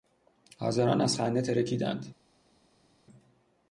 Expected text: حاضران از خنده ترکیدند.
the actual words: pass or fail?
pass